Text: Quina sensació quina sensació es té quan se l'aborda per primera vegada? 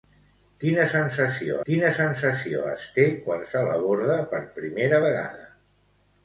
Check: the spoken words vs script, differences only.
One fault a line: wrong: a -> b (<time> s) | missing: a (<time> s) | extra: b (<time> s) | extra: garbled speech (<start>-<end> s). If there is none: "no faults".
no faults